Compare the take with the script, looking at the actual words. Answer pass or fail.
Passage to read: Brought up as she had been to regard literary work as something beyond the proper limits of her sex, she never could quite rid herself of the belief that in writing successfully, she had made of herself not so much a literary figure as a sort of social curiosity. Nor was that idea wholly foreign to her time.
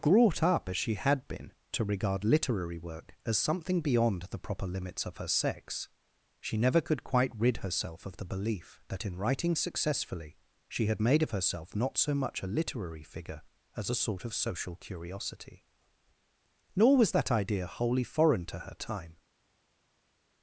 pass